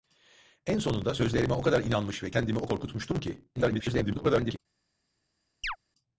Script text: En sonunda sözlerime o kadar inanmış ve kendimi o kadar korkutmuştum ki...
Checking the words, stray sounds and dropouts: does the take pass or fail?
fail